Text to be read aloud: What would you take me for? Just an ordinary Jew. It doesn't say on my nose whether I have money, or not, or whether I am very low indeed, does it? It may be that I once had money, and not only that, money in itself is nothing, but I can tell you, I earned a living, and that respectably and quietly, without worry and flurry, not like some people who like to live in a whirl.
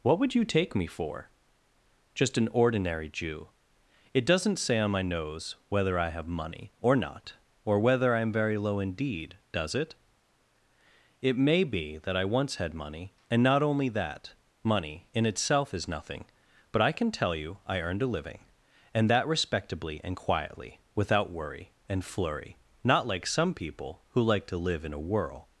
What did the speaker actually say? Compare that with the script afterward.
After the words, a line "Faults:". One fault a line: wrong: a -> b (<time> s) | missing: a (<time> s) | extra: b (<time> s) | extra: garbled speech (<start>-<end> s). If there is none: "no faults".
What would you take me for? Just an ordinary Jew. It doesn't say on my nose whether I have money, or not, or whether I am very low indeed, does it? It may be that I once had money, and not only that, money in itself is nothing, but I can tell you, I earned a living, and that respectably and quietly, without worry and flurry, not like some people who like to live in a whirl.
Faults:
no faults